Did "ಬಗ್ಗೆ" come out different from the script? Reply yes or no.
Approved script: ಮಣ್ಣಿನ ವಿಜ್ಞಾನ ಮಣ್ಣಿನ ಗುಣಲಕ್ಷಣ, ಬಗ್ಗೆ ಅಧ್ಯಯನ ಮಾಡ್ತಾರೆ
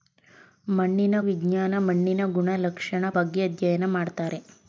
no